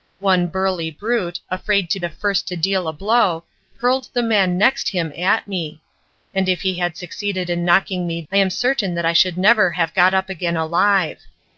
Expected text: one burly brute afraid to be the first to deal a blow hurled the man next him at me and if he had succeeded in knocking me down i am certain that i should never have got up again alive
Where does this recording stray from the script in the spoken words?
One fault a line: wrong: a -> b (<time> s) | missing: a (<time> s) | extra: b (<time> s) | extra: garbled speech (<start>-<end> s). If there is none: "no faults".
missing: be (2.0 s)
missing: down (8.2 s)